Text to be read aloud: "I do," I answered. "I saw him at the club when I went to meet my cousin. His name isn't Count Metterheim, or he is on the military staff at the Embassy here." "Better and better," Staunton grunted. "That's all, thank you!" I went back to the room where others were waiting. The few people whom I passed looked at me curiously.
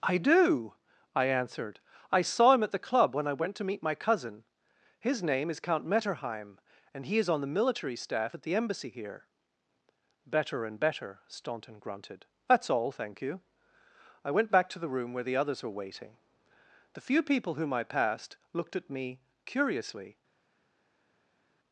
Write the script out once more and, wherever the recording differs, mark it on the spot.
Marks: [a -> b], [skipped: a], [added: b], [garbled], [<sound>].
"I do," I answered. "I saw him at the club when I went to meet my cousin. His name [isn't -> is] Count Metterheim, [or -> and] he is on the military staff at the Embassy here." "Better and better," Staunton grunted. "That's all, thank you!" I went back to the room where [added: the] others were waiting. The few people whom I passed looked at me curiously.